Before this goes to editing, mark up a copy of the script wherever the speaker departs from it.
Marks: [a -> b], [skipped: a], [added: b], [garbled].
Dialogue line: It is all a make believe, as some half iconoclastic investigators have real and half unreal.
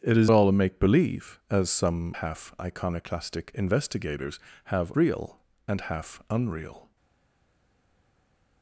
It is all a make believe, as some half iconoclastic investigators have real and half unreal.